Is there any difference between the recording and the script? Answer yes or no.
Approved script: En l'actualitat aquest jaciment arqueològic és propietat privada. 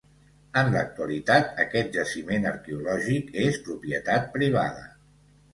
no